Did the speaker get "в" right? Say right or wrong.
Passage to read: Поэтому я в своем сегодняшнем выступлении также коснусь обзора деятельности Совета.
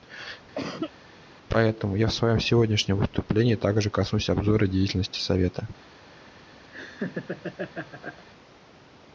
right